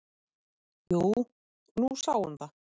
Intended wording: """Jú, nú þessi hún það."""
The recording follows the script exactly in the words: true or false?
false